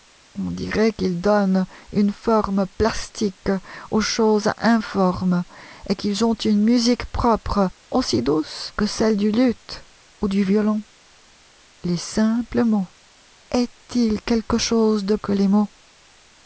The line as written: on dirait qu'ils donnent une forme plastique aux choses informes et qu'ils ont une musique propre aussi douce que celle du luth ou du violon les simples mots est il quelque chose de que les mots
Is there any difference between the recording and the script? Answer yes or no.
no